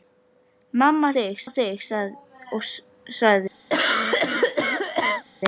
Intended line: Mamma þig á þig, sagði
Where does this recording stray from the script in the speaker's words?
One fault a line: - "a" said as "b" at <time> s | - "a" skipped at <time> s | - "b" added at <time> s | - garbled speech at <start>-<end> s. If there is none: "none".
none